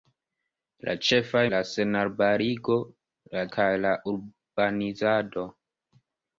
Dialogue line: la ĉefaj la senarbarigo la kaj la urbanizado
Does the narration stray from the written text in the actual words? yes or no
no